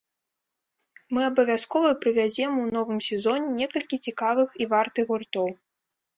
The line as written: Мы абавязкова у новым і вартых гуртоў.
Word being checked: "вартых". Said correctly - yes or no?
yes